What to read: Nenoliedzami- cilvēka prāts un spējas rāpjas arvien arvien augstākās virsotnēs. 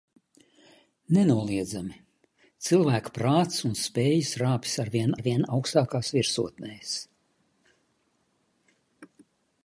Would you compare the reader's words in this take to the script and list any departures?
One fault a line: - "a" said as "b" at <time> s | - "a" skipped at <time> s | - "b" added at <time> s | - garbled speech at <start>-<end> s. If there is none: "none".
none